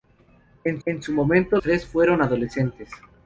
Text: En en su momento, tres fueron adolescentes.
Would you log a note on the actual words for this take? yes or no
no